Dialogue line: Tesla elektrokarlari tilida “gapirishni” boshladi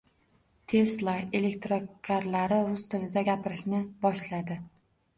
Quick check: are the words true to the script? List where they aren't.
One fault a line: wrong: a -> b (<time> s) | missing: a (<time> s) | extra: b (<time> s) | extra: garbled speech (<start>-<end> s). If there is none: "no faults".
extra: rus (2.7 s)